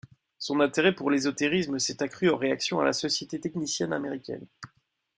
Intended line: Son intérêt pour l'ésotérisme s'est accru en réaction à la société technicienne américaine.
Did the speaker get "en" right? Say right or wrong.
right